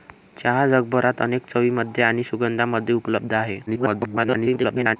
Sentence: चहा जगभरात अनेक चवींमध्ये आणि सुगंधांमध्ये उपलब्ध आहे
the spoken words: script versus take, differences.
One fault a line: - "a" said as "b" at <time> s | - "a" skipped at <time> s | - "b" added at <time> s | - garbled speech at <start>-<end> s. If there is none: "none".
- garbled speech at 3.7-5.0 s